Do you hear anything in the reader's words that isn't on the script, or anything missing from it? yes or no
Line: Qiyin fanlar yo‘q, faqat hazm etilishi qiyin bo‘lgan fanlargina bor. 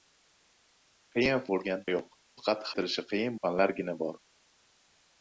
yes